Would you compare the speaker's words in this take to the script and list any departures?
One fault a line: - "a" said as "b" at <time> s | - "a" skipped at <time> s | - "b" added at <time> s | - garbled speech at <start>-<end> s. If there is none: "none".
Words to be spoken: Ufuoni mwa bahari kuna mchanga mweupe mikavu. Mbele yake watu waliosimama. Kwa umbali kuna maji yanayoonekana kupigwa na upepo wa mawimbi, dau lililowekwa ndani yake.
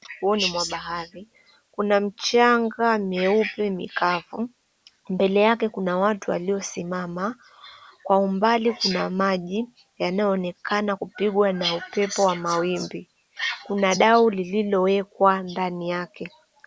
- "kuna" added at 5.7 s
- "kuna" added at 13.7 s